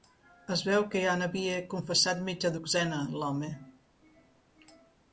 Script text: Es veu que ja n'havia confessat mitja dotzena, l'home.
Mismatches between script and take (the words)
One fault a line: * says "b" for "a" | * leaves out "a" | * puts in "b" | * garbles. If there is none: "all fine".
all fine